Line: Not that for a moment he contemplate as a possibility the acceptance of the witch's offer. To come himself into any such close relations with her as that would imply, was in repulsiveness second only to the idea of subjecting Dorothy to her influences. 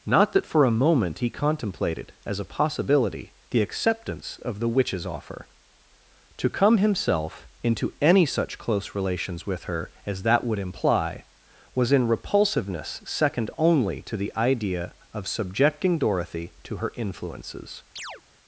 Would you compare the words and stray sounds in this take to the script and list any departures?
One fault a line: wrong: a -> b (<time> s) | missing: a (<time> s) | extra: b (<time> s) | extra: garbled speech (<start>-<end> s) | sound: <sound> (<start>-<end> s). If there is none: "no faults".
wrong: contemplate -> contemplated (1.3 s)
sound: chirp (18.0-18.2 s)